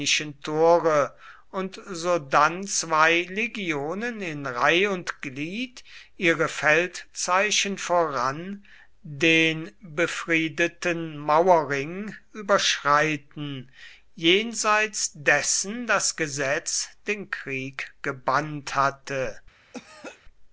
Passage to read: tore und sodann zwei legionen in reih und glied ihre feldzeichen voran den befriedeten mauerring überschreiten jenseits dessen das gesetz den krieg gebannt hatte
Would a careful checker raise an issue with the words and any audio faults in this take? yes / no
yes